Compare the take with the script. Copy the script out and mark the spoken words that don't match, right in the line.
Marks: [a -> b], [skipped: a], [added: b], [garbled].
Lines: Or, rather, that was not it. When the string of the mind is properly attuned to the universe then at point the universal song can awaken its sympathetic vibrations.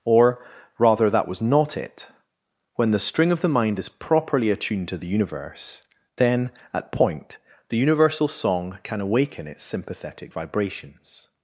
Or, rather, that was not it. When the string of the mind is properly attuned to the universe then at point the universal song can awaken its sympathetic vibrations.